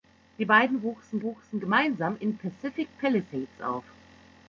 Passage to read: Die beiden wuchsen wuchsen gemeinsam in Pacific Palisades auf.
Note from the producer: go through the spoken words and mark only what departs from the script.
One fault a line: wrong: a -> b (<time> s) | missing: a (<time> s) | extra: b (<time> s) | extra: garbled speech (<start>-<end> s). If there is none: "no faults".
no faults